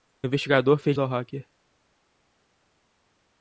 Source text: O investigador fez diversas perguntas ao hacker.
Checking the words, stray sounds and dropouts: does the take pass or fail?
fail